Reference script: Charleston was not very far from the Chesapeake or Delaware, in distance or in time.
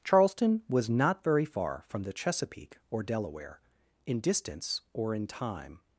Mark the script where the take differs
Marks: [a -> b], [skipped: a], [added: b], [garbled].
Charleston was not very far from the Chesapeake or Delaware, in distance or in time.